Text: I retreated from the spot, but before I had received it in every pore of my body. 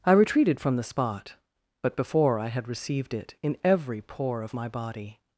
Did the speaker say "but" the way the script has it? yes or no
yes